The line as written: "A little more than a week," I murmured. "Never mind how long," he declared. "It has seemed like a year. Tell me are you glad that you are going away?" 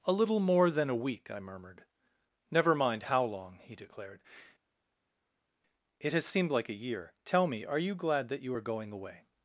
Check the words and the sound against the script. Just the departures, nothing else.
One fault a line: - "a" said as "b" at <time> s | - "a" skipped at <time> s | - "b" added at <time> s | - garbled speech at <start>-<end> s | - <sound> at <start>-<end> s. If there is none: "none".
none